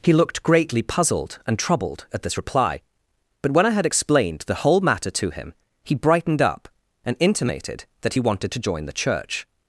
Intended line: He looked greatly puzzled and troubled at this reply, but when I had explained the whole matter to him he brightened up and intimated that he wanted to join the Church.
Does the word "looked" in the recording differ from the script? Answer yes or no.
no